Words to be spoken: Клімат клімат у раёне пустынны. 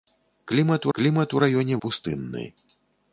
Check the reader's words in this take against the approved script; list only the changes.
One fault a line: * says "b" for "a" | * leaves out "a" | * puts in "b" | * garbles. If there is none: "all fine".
all fine